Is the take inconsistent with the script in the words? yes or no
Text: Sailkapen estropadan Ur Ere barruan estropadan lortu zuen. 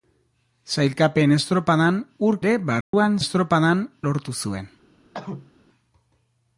no